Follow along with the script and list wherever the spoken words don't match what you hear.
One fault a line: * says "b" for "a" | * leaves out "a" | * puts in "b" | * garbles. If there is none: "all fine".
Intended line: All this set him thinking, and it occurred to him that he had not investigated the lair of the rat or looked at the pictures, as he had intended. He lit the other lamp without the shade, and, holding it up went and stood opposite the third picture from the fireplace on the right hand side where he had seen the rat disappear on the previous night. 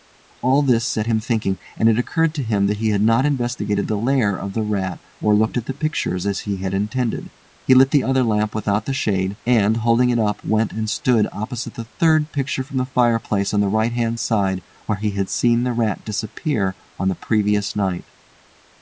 all fine